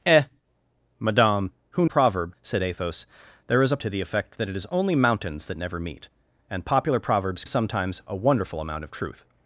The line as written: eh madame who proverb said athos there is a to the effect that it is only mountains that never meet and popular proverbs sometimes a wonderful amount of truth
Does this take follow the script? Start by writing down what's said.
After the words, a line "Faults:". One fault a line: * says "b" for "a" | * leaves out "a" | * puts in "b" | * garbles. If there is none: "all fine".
eh madame who proverb said athos there is a to the effect that it is only mountains that never meet and popular proverbs sometimes a wonderful amount of truth
Faults:
all fine